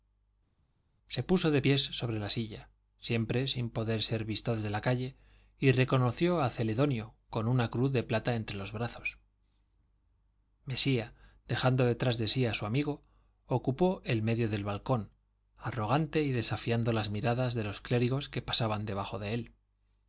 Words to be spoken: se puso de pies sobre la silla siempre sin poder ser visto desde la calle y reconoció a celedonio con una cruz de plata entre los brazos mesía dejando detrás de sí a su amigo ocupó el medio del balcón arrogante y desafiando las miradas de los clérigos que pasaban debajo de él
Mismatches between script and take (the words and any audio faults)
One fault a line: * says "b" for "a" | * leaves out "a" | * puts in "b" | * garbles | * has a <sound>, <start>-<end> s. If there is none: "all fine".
all fine